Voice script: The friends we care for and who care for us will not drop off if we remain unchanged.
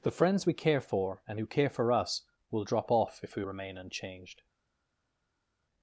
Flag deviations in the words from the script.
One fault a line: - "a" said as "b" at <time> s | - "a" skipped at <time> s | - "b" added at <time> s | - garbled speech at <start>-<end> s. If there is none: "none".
- "not" skipped at 2.6 s